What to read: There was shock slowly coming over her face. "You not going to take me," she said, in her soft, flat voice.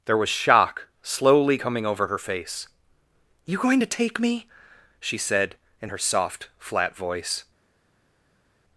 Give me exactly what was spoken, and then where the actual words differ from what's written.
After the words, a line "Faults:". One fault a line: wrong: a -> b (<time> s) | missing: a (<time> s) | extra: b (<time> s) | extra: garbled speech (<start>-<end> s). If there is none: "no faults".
There was shock slowly coming over her face. "You going to take me," she said, in her soft, flat voice.
Faults:
missing: not (3.6 s)